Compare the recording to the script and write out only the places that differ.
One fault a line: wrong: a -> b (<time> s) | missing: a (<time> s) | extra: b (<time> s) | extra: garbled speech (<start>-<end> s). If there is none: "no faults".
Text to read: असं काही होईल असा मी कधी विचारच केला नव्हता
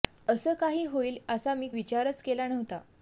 missing: कधी (1.7 s)